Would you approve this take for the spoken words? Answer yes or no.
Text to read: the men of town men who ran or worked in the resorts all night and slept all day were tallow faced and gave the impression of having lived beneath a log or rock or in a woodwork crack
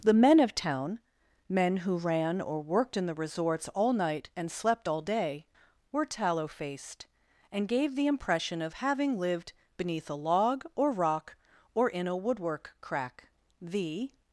no